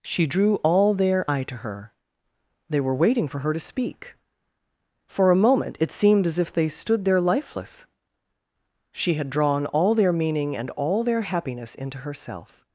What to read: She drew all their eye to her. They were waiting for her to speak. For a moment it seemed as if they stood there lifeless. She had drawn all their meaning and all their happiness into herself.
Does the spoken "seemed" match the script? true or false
true